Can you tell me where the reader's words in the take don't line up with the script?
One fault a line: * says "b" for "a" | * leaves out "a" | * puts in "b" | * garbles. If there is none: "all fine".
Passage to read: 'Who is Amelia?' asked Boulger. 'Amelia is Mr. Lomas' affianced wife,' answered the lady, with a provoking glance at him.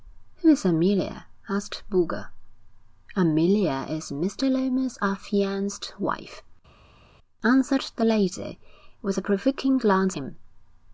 * leaves out "at"